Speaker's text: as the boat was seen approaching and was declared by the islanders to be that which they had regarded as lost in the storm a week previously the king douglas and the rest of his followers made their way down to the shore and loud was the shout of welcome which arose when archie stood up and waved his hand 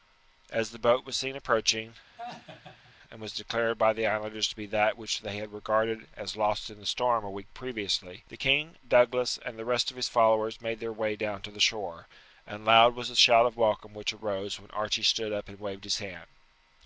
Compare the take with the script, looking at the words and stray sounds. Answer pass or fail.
fail